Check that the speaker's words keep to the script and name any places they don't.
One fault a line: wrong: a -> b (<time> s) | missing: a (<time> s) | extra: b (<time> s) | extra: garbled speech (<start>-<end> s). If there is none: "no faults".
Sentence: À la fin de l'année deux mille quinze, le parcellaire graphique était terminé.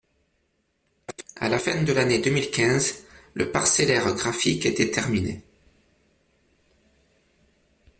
no faults